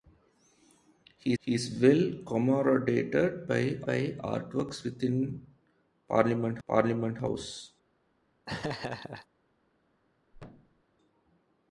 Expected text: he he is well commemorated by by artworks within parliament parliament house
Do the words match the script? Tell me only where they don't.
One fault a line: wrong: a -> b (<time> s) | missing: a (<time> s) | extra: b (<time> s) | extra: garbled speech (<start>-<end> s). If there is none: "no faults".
no faults